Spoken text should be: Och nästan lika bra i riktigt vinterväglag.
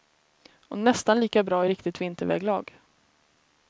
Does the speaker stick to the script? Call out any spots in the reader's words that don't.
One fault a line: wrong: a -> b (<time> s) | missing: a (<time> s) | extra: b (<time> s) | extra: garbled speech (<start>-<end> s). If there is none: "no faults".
no faults